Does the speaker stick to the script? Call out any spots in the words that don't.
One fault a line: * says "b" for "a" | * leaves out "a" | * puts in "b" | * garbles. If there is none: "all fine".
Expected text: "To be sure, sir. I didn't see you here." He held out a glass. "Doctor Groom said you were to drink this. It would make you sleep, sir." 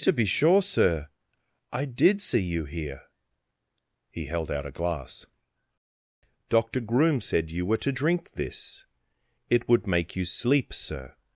* says "did" for "didn't"